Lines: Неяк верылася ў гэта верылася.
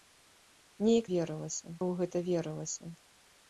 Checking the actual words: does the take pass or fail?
pass